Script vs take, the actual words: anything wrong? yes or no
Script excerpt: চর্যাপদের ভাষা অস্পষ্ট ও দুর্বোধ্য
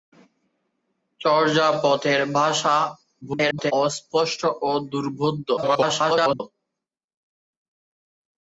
yes